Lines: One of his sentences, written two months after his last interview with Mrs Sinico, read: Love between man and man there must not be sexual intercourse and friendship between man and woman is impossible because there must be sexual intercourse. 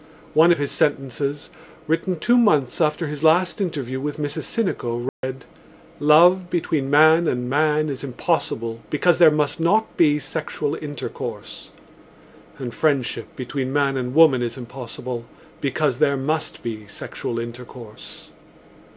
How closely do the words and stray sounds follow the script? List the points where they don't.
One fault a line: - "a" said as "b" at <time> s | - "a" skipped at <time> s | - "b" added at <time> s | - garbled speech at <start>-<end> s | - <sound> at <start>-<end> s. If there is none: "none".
- dropout at 5.1-5.2 s
- "is impossible because" added at 7.9 s